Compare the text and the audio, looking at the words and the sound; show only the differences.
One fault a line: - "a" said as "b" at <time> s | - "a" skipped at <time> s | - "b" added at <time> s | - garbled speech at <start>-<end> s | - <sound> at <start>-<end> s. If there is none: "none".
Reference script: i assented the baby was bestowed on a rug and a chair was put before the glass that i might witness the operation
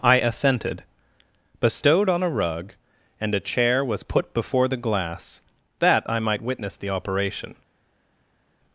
- "the baby was" skipped at 0.8 s